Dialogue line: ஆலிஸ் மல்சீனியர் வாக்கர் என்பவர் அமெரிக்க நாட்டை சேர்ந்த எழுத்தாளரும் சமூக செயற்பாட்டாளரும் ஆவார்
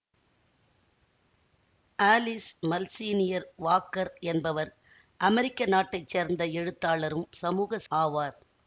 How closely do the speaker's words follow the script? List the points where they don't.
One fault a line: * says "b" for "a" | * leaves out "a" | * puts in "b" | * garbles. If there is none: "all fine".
* leaves out "செயற்பாட்டாளரும்"